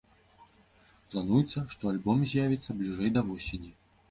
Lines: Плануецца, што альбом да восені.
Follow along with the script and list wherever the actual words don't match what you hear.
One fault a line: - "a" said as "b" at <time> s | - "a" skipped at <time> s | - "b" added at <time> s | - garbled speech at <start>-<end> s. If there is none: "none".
- "з'явіцца бліжэй" added at 2.3 s